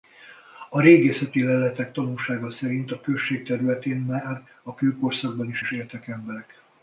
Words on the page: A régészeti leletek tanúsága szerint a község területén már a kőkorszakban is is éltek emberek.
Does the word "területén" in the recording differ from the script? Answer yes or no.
no